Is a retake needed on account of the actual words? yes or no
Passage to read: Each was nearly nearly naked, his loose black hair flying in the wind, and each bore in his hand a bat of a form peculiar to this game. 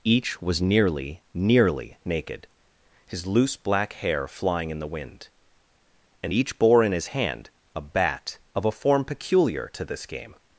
no